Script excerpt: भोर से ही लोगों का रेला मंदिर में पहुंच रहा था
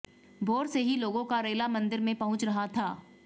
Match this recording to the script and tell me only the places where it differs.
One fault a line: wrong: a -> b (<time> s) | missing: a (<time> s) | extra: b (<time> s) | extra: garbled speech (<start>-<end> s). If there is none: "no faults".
no faults